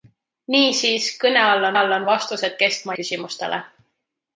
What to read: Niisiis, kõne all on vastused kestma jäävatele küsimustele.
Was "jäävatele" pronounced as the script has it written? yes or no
no